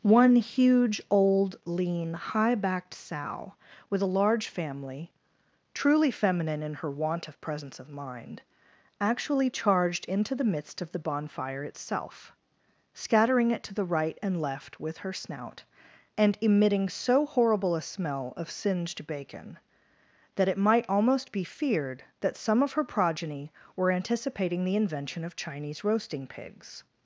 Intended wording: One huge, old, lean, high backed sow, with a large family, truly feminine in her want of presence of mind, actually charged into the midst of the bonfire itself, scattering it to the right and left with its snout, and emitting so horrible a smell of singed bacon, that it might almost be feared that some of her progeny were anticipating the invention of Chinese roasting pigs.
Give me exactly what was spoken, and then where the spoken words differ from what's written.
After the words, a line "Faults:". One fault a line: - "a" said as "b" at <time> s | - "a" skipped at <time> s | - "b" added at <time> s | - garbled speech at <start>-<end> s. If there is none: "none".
One huge, old, lean, high backed sow, with a large family, truly feminine in her want of presence of mind, actually charged into the midst of the bonfire itself, scattering it to the right and left with her snout, and emitting so horrible a smell of singed bacon, that it might almost be feared that some of her progeny were anticipating the invention of Chinese roasting pigs.
Faults:
- "its" said as "her" at 15.0 s